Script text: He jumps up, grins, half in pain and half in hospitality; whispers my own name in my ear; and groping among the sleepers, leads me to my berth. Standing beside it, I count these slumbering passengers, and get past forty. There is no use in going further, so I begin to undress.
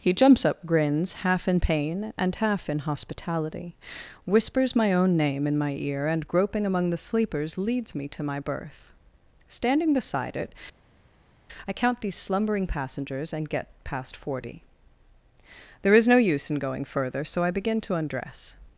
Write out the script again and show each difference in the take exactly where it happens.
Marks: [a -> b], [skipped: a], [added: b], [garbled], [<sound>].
He jumps up, grins, half in pain and half in hospitality; whispers my own name in my ear; and groping among the sleepers, leads me to my berth. Standing beside it, I count these slumbering passengers, and get past forty. There is no use in going further, so I begin to undress.